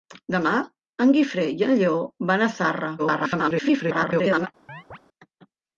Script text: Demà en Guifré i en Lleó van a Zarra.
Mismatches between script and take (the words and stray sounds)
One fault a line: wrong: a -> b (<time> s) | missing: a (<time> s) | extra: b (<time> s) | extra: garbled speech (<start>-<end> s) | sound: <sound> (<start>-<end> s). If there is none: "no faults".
extra: garbled speech (3.0-4.5 s)
sound: chirp (4.7-5.0 s)